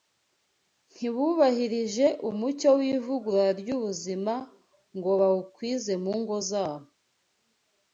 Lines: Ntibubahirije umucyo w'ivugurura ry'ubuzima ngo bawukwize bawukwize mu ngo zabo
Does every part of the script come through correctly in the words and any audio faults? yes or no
no